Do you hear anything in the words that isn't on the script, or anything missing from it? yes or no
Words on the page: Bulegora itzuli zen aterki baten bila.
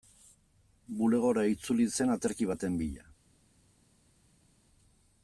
no